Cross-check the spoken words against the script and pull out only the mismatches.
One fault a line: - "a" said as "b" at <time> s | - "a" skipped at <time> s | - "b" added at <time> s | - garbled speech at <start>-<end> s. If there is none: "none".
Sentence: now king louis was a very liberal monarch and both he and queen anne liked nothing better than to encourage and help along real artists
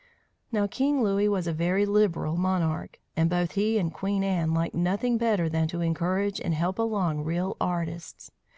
none